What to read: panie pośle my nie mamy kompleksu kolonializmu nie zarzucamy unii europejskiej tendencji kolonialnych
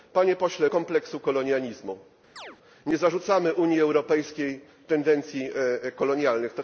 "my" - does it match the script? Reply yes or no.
no